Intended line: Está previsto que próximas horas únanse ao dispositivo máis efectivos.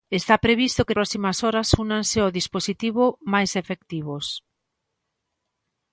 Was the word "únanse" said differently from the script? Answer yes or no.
no